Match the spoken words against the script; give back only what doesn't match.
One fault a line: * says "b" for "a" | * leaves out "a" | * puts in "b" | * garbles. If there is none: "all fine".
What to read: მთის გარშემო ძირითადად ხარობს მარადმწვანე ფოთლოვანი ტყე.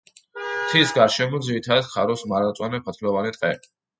all fine